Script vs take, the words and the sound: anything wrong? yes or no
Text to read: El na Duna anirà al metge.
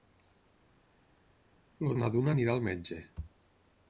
no